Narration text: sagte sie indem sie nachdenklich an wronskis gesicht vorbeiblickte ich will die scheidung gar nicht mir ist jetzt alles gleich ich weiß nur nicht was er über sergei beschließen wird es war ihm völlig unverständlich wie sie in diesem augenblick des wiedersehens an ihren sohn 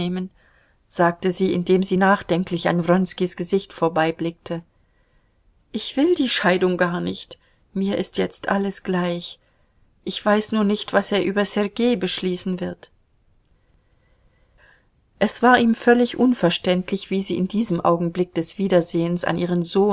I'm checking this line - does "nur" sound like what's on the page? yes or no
yes